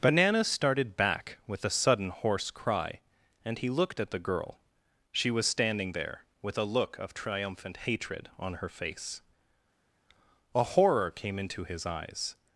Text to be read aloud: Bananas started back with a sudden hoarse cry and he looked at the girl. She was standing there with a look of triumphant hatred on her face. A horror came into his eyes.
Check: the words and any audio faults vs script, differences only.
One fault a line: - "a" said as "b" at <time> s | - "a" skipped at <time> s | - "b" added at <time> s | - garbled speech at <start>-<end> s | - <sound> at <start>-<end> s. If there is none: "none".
none